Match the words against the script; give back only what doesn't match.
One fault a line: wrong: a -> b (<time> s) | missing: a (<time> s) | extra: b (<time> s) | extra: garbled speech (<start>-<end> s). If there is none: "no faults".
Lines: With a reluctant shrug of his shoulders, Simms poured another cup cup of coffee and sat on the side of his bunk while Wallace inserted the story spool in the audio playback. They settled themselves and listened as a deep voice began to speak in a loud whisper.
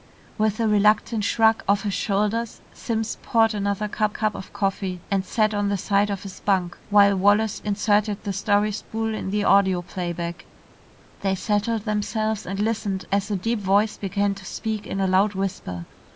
no faults